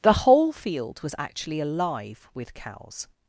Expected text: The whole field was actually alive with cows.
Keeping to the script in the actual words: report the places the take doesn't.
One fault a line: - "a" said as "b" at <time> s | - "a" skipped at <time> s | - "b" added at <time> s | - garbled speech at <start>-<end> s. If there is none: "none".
none